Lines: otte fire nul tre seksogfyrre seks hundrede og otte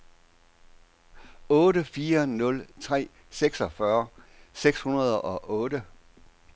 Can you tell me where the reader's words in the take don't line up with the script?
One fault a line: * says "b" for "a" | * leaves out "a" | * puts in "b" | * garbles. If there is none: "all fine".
all fine